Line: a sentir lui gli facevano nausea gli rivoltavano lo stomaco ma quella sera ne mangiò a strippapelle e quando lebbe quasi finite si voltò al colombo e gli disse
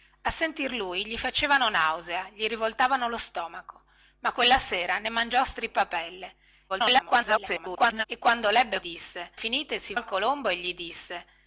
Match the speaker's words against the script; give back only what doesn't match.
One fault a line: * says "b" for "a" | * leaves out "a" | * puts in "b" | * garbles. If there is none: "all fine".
* garbles
* says "disse" for "quasi"
* leaves out "voltò"